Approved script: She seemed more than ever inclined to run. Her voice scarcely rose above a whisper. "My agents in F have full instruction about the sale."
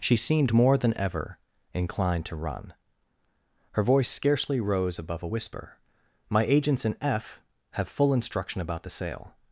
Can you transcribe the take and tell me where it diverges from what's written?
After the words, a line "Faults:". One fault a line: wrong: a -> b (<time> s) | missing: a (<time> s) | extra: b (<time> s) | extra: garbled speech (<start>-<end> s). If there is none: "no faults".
She seemed more than ever inclined to run. Her voice scarcely rose above a whisper. "My agents in F have full instruction about the sale."
Faults:
no faults